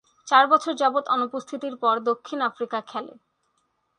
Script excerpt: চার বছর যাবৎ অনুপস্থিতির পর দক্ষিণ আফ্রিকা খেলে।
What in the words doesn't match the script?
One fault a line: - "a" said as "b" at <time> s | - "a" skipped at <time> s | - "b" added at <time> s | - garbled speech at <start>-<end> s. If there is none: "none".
none